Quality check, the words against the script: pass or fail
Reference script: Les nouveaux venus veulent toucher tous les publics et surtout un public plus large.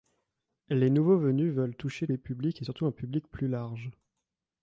fail